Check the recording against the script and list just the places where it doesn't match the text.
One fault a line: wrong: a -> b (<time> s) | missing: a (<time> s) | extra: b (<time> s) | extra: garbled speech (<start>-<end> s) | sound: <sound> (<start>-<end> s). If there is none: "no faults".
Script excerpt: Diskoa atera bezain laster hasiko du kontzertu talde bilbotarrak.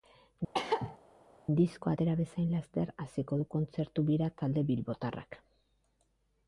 sound: cough (0.5-1.0 s)
extra: bira (4.1 s)